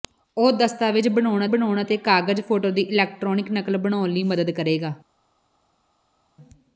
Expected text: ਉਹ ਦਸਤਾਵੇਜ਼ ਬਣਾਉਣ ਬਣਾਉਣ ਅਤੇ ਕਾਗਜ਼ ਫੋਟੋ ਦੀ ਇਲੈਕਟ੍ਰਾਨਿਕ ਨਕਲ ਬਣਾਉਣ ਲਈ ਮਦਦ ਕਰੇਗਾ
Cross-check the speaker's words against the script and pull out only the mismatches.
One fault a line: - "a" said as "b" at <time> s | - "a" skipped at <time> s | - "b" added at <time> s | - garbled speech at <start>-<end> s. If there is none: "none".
none